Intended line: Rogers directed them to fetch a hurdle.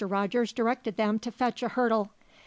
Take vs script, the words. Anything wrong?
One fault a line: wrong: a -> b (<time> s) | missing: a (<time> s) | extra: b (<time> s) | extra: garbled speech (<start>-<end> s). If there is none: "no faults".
no faults